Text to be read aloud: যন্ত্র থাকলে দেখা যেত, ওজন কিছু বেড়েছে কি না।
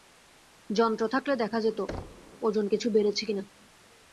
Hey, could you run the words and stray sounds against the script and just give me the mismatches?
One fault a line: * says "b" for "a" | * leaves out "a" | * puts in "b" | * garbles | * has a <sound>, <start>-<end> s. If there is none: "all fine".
* has a thud, 1.9-2.3 s